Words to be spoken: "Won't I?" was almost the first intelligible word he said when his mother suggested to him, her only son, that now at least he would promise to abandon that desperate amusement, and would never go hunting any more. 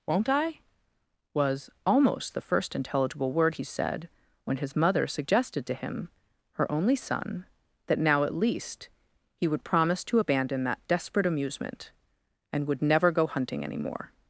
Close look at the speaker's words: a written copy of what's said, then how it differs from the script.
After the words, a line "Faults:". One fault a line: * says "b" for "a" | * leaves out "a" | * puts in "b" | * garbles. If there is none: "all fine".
"Won't I?" was almost the first intelligible word he said when his mother suggested to him, her only son, that now at least he would promise to abandon that desperate amusement, and would never go hunting any more.
Faults:
all fine